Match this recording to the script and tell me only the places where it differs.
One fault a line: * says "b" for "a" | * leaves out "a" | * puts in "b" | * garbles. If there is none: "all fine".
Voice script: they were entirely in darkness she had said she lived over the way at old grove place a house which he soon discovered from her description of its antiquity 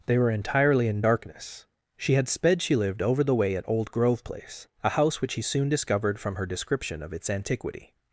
* says "sped" for "said"